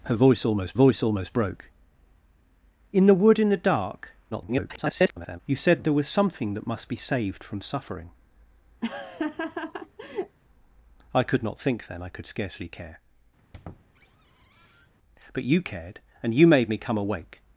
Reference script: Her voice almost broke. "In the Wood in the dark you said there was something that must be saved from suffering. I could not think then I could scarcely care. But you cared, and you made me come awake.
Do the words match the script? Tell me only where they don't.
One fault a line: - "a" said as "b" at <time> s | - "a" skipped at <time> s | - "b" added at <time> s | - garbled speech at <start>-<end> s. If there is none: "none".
- "voice almost" added at 0.7 s
- garbled speech at 4.3-5.4 s